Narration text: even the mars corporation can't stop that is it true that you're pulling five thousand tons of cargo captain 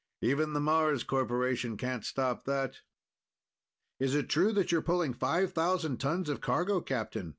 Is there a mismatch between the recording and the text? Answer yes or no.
no